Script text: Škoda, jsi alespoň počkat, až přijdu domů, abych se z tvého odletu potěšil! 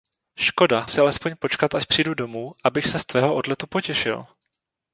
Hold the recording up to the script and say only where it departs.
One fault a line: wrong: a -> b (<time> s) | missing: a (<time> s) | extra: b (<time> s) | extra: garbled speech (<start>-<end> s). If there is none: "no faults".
no faults